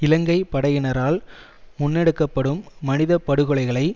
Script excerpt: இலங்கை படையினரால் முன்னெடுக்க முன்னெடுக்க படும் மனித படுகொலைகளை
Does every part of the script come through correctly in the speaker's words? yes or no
no